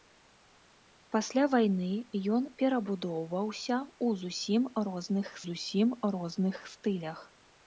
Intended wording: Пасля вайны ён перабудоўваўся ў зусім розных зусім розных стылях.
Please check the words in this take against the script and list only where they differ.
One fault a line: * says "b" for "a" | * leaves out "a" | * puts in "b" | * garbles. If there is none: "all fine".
all fine